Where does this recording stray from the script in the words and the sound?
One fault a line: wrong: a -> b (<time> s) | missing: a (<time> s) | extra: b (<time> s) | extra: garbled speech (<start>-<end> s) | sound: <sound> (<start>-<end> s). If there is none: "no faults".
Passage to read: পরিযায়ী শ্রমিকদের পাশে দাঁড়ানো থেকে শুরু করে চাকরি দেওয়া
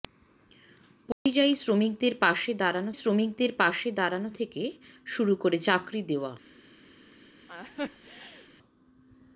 sound: dropout (1.1-1.3 s)
extra: শ্রমিকদের পাশে দাঁড়ানো (2.9 s)
sound: laugh (7.5-8.5 s)